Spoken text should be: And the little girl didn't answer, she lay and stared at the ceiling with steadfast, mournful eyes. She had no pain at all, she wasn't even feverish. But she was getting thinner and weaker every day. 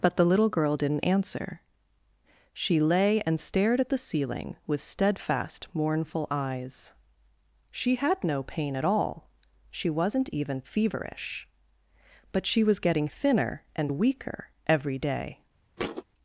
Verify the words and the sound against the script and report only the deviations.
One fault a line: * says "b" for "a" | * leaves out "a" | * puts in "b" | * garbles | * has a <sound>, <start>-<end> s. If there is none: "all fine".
* says "But" for "And"
* has a thud, 15.8-16.0 s